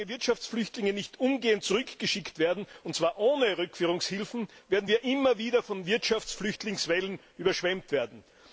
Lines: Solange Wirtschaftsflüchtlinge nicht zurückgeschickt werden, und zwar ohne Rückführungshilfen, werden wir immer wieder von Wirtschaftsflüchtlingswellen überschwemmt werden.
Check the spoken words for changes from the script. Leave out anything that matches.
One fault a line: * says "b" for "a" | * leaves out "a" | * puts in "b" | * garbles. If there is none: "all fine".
* puts in "umgehend"